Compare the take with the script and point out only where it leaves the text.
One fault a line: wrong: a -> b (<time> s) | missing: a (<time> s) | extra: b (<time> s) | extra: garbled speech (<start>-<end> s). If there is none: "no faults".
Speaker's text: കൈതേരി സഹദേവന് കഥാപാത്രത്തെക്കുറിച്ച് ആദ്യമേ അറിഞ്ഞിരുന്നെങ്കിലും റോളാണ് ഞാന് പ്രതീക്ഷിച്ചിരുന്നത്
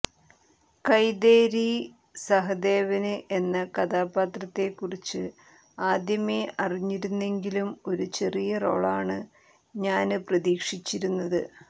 extra: എന്ന (3.4 s)
extra: ഒരു ചെറിയ (7.9 s)